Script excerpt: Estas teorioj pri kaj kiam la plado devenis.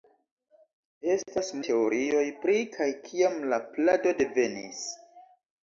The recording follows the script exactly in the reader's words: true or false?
true